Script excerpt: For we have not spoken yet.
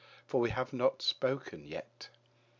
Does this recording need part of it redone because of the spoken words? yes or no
no